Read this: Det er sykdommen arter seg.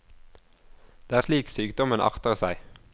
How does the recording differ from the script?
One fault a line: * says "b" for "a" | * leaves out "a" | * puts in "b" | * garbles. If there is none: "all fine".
* puts in "slik"